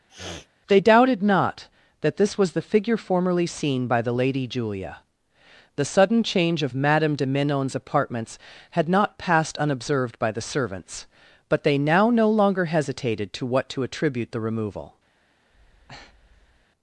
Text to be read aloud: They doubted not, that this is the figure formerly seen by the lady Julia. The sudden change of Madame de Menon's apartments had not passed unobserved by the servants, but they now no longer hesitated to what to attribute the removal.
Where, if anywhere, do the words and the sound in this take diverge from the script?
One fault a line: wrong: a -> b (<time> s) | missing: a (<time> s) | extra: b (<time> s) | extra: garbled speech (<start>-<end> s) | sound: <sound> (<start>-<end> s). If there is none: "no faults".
sound: sniff (0.1-0.5 s)
wrong: is -> was (2.4 s)
sound: breath (15.5-16.7 s)